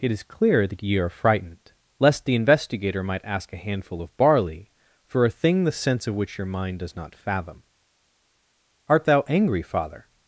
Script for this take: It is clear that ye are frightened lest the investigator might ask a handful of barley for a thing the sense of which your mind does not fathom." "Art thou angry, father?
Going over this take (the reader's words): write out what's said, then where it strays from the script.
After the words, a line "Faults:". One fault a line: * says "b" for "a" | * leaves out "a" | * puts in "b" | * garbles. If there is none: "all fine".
It is clear that ye are frightened lest the investigator might ask a handful of barley for a thing the sense of which your mind does not fathom." "Art thou angry, father?
Faults:
all fine